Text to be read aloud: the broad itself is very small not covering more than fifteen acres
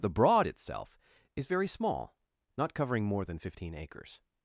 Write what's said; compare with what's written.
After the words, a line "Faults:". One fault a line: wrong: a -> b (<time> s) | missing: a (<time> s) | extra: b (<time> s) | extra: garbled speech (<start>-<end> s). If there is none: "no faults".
the broad itself is very small not covering more than fifteen acres
Faults:
no faults